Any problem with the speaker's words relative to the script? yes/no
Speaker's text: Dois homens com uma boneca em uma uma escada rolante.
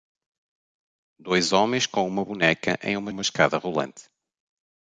no